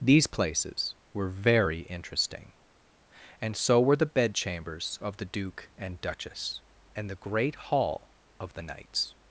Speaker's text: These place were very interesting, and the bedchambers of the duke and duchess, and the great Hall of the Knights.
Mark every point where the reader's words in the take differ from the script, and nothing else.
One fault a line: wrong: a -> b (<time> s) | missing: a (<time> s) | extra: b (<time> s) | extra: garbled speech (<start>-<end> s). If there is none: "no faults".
wrong: place -> places (0.2 s)
extra: so were (3.5 s)